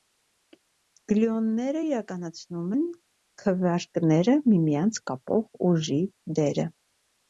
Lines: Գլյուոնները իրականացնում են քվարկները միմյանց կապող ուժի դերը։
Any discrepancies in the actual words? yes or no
no